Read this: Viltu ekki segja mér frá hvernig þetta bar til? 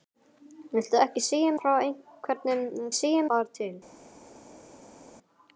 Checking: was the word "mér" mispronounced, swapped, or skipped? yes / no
yes